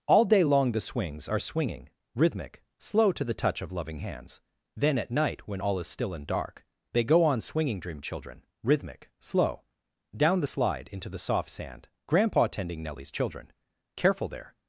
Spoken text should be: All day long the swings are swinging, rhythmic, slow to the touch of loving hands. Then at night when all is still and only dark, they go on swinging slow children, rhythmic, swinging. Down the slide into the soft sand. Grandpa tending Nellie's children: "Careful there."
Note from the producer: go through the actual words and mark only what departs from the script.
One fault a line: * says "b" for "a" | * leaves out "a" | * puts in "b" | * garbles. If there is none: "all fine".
* leaves out "only"
* says "dream" for "slow"
* says "slow" for "swinging"